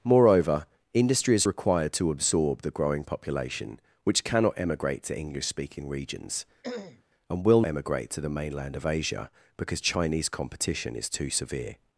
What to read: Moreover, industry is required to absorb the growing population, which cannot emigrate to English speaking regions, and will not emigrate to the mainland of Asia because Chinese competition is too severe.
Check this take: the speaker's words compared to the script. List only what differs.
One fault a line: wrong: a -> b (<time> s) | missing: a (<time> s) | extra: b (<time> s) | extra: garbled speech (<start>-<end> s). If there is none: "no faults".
missing: not (7.6 s)